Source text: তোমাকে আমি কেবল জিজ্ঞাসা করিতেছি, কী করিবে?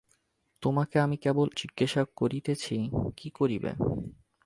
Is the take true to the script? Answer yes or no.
yes